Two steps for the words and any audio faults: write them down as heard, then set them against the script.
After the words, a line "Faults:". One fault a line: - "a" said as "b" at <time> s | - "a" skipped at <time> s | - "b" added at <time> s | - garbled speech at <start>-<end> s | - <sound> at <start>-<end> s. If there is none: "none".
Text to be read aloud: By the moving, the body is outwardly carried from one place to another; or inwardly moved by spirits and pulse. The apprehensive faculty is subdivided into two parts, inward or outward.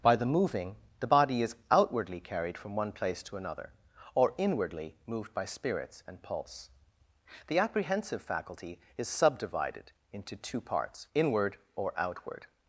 By the moving, the body is outwardly carried from one place to another; or inwardly moved by spirits and pulse. The apprehensive faculty is subdivided into two parts, inward or outward.
Faults:
none